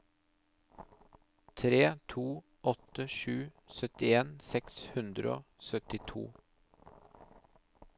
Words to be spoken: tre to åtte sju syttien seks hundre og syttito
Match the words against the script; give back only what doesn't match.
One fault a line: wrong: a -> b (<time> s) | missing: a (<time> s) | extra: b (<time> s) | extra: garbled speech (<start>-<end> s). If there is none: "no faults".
no faults